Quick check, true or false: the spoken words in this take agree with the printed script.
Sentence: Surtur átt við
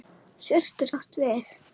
true